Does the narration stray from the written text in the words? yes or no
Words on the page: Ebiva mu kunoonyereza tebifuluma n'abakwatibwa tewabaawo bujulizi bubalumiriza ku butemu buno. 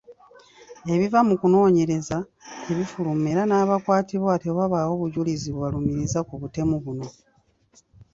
yes